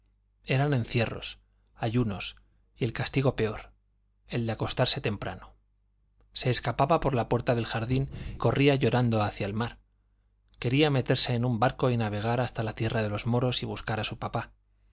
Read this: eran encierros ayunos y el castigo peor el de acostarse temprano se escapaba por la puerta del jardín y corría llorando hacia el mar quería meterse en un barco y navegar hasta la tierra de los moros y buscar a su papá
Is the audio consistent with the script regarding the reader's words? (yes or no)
no